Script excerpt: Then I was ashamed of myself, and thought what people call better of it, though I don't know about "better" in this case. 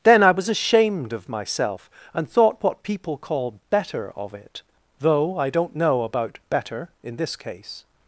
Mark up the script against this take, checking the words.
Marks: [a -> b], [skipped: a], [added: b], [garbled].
Then I was ashamed of myself, and thought what people call better of it, though I don't know about "better" in this case.